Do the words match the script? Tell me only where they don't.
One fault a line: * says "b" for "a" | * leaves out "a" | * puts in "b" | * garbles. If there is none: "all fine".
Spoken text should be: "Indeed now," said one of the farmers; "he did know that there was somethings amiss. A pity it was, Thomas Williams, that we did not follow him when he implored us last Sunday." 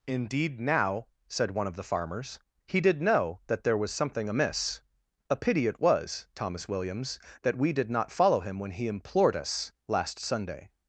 * says "something" for "somethings"